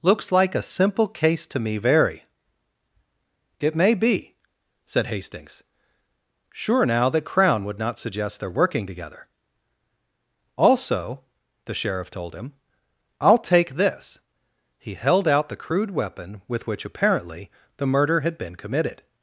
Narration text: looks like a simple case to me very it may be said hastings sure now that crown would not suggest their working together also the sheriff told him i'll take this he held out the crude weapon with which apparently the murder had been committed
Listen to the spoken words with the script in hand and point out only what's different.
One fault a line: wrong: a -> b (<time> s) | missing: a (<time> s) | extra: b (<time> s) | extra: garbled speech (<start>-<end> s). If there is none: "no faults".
no faults